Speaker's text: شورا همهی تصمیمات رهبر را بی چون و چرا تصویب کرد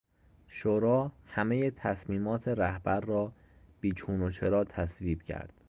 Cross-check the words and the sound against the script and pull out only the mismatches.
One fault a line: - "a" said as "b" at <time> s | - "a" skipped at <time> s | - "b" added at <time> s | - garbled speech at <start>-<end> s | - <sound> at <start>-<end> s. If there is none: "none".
none